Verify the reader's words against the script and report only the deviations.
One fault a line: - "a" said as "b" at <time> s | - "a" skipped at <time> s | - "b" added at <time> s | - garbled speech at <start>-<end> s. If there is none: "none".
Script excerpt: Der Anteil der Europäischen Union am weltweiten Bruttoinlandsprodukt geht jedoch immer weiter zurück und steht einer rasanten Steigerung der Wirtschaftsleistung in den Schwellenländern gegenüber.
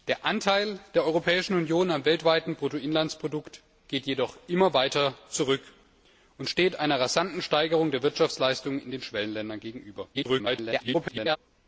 - garbled speech at 10.1-11.4 s